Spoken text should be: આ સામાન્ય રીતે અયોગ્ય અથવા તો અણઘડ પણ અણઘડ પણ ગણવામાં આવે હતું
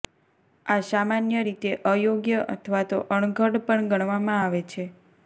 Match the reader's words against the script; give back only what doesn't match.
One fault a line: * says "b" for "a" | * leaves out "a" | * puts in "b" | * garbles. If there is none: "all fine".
* leaves out "અણઘડ પણ"
* says "છે" for "હતું"